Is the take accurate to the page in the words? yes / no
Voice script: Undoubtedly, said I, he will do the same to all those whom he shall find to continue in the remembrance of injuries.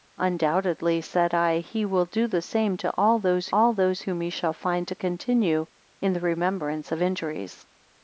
no